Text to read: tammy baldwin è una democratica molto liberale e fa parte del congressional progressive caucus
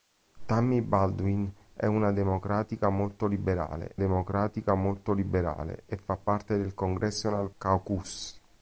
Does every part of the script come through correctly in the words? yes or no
no